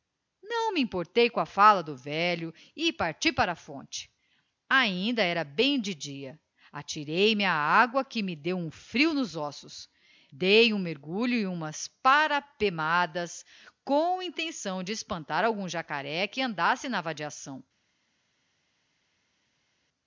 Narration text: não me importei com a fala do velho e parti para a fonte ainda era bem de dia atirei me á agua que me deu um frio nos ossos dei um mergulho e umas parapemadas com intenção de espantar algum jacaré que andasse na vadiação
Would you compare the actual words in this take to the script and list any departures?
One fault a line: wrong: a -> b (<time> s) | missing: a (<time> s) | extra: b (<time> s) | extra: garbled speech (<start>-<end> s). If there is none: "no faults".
no faults